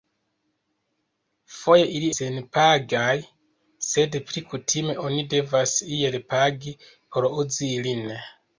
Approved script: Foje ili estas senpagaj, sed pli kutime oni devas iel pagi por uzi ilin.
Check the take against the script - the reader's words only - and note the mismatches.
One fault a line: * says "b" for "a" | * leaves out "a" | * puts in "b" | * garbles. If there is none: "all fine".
* leaves out "estas"